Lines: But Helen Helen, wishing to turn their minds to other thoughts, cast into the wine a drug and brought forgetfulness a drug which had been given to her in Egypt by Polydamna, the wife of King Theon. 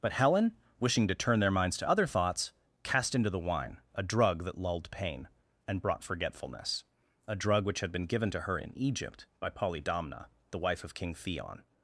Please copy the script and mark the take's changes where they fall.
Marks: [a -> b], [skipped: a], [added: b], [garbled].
But Helen [skipped: Helen,] wishing to turn their minds to other thoughts, cast into the wine a drug [added: that lulled pain] and brought forgetfulness a drug which had been given to her in Egypt by Polydamna, the wife of King Theon.